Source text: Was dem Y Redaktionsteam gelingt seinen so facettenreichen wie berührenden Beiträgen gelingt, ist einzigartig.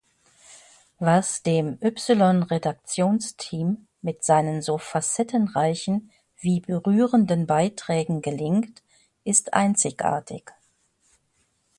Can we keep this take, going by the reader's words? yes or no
no